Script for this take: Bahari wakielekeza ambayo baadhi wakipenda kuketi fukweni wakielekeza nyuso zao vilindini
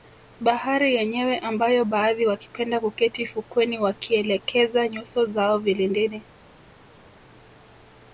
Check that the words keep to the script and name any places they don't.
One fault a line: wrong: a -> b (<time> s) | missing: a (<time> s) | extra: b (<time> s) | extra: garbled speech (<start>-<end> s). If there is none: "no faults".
wrong: wakielekeza -> yenyewe (0.9 s)